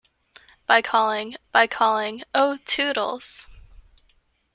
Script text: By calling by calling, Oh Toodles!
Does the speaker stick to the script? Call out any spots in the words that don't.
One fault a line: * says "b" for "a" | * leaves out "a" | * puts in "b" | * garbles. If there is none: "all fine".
all fine